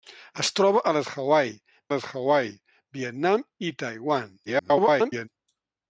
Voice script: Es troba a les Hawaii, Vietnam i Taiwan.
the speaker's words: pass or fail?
fail